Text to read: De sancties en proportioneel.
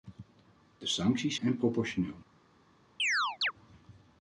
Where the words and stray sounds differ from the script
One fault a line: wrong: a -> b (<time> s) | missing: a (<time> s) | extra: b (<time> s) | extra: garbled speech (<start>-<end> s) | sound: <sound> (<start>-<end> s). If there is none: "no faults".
sound: chirp (3.0-3.5 s)